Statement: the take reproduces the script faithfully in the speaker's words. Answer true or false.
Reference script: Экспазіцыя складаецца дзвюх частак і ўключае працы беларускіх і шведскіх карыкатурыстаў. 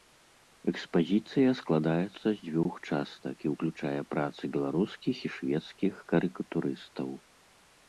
false